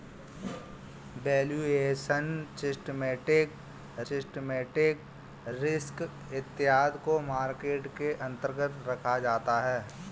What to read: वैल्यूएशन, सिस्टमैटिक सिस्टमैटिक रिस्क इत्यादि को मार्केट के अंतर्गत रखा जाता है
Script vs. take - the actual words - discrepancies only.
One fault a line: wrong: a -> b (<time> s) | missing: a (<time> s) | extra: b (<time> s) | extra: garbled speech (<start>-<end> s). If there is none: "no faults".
no faults